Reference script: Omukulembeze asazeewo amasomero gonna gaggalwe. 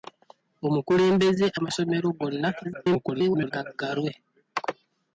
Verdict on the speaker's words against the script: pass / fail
fail